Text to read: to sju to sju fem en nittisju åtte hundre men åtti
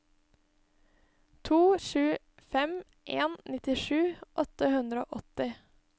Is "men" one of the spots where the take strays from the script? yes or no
yes